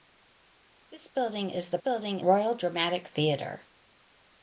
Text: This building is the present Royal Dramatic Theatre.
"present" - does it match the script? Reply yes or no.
no